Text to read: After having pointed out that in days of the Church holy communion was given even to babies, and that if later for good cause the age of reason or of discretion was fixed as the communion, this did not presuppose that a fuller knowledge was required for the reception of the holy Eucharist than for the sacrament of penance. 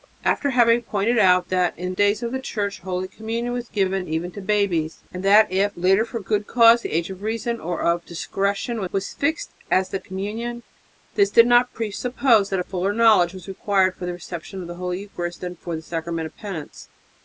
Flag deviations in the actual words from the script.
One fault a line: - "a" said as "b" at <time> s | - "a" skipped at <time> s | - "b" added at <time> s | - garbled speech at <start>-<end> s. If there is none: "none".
none